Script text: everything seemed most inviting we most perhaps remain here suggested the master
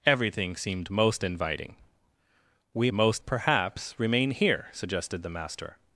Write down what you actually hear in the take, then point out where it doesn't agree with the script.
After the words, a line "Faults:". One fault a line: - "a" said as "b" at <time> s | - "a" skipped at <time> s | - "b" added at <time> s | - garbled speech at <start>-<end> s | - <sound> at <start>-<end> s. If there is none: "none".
everything seemed most inviting we most perhaps remain here suggested the master
Faults:
none